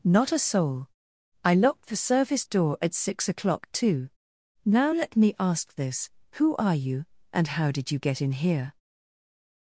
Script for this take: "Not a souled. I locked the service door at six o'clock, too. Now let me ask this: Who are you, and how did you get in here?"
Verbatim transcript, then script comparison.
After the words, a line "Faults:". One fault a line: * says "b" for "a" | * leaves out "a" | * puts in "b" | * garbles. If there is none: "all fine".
"Not a soul. I locked the service door at six o'clock, too. Now let me ask this: Who are you, and how did you get in here?"
Faults:
* says "soul" for "souled"